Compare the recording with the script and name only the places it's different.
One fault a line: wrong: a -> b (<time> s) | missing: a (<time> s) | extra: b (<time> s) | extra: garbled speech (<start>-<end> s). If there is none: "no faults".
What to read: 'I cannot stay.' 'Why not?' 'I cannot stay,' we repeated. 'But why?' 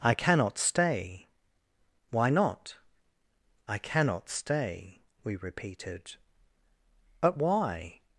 no faults